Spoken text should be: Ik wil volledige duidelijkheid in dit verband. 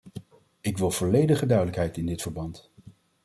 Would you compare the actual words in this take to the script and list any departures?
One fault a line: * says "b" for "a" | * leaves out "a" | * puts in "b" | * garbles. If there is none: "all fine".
all fine